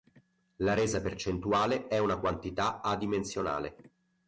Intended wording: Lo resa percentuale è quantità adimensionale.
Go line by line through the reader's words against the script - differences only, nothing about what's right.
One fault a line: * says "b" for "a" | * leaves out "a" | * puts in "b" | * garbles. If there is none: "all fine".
* says "La" for "Lo"
* puts in "una"